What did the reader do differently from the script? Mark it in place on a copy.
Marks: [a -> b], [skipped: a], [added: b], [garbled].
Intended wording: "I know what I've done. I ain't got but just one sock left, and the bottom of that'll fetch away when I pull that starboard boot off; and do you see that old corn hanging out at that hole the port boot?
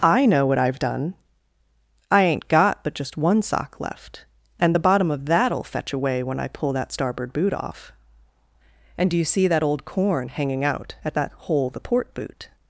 "I know what I've done. I ain't got but just one sock left, and the bottom of that'll fetch away when I pull that starboard boot off; and do you see that old corn hanging out at that hole the port boot?